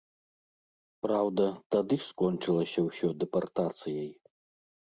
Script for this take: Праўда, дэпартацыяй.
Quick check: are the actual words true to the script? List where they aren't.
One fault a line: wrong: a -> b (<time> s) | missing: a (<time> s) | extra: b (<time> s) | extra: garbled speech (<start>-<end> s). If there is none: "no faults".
extra: тады скончылася ўсё (1.8 s)